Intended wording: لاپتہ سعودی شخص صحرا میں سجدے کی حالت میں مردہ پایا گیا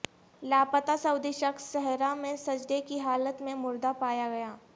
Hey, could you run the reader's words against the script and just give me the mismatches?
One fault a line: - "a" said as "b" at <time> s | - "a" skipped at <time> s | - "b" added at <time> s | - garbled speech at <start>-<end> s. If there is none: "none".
none